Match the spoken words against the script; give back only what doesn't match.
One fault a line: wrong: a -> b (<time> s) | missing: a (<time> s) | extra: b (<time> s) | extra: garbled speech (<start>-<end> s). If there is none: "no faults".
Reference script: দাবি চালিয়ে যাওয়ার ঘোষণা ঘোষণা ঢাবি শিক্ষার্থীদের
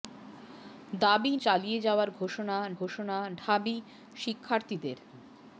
no faults